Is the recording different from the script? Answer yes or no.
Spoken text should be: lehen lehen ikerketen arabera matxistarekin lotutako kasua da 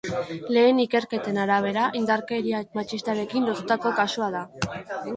yes